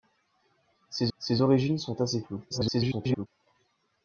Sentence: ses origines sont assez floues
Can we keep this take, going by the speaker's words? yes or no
no